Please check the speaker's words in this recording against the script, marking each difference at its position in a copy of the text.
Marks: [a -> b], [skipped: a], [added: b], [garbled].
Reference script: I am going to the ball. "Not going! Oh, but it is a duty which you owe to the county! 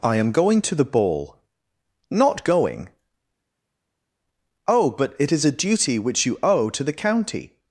I am going to the ball. "Not going! Oh, but it is a duty which you owe to the county!